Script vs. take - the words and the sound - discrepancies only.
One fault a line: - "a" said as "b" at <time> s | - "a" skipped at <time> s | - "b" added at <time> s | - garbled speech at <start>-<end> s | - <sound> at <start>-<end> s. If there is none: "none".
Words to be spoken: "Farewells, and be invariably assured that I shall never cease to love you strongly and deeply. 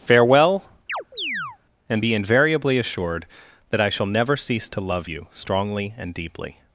- "Farewells" said as "Farewell" at 0.0 s
- chirp at 0.9-1.6 s